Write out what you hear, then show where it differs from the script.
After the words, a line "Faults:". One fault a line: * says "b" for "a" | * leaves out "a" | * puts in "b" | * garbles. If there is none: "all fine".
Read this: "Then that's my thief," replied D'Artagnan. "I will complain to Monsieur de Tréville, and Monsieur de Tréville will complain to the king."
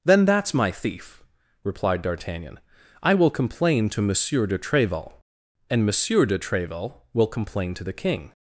"Then that's my thief," replied D'Artagnan. "I will complain to Monsieur de Tréville, and Monsieur de Tréville will complain to the king."
Faults:
all fine